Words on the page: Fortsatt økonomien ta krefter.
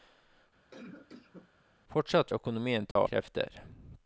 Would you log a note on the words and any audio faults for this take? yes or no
yes